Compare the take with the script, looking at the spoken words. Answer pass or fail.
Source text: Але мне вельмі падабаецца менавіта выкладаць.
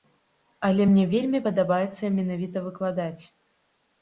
pass